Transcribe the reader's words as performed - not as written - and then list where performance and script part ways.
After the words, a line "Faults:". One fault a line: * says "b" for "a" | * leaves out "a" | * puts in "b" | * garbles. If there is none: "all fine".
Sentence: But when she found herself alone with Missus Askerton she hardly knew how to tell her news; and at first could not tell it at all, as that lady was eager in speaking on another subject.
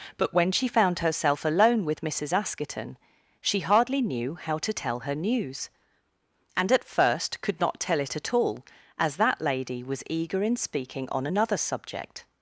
But when she found herself alone with Missus Askerton she hardly knew how to tell her news; and at first could not tell it at all, as that lady was eager in speaking on another subject.
Faults:
all fine